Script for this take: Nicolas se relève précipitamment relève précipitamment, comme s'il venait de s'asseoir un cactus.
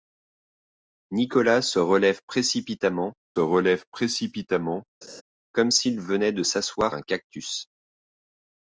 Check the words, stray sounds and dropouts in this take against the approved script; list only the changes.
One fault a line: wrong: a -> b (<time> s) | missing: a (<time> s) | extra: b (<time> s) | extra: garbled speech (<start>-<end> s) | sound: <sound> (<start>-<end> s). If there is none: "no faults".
sound: laugh (5.0-5.2 s)